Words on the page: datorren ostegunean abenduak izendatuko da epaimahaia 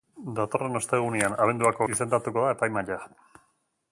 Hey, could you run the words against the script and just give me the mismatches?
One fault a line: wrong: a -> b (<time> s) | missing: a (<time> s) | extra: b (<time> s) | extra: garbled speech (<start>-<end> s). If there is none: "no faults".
no faults